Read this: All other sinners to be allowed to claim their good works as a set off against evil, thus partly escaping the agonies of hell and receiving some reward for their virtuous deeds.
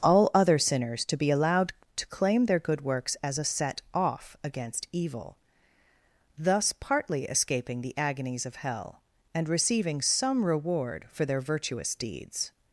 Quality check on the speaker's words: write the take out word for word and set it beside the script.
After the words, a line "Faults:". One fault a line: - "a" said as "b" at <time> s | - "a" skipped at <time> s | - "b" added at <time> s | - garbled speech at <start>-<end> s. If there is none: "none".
All other sinners to be allowed to claim their good works as a set off against evil, thus partly escaping the agonies of hell and receiving some reward for their virtuous deeds.
Faults:
none